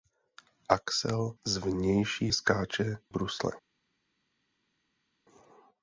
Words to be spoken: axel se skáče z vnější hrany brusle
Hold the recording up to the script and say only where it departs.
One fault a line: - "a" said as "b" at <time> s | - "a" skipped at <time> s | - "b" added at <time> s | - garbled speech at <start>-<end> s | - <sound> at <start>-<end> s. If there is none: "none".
- "se skáče" skipped at 1.4 s
- "hrany" said as "skáče" at 2.3 s